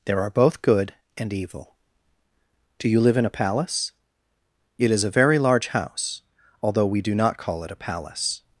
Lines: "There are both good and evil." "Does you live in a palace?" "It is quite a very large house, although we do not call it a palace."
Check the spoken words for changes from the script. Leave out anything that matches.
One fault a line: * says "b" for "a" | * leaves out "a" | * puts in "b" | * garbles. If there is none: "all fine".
* says "Do" for "Does"
* leaves out "quite"